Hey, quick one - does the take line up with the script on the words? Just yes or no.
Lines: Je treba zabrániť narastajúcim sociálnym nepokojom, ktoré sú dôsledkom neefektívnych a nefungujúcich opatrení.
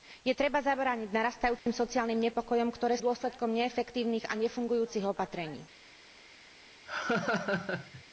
no